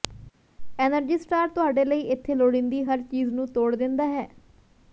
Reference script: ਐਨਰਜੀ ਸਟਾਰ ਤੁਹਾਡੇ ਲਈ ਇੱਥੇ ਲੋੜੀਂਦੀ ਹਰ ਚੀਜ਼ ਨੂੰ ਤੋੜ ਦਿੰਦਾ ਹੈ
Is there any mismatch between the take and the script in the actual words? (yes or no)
no